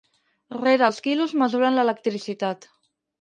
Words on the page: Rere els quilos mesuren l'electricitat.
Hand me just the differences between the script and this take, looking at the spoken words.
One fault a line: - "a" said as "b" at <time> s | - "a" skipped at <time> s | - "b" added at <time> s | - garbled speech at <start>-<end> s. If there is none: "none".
none